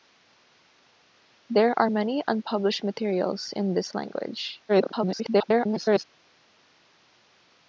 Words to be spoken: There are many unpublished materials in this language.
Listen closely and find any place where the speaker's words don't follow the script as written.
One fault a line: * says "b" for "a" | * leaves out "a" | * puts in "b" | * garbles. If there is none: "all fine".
* garbles